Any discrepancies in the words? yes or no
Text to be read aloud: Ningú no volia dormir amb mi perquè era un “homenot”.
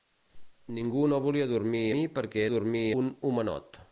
yes